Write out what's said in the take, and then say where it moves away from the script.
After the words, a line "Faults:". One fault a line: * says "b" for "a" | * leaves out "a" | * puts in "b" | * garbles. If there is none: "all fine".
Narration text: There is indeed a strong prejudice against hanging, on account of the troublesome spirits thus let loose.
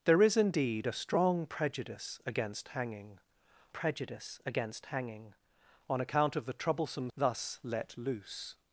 There is indeed a strong prejudice against hanging prejudice against hanging, on account of the troublesome thus let loose.
Faults:
* puts in "prejudice against hanging"
* leaves out "spirits"